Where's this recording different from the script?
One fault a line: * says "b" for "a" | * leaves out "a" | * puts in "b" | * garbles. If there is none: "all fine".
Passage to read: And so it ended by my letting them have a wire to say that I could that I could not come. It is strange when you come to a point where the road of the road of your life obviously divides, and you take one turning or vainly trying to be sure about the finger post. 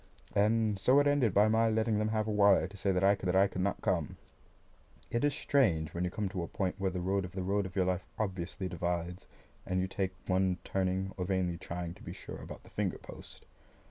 all fine